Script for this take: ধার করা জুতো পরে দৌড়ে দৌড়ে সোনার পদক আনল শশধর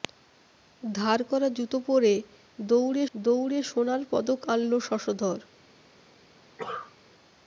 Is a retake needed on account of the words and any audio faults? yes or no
yes